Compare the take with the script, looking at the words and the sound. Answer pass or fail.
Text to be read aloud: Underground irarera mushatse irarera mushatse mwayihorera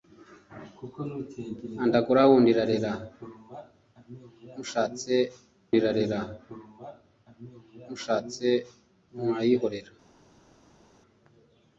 pass